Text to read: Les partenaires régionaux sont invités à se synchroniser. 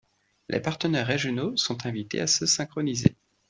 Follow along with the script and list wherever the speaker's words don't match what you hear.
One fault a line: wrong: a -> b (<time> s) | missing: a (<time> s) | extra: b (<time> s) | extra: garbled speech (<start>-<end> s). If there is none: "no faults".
no faults